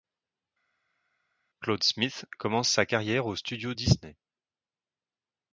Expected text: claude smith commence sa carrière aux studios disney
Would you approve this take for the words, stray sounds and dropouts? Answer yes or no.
yes